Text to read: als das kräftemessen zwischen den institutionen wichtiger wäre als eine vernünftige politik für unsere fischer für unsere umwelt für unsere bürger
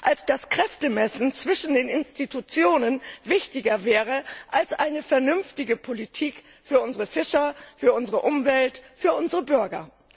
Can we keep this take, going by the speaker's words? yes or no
yes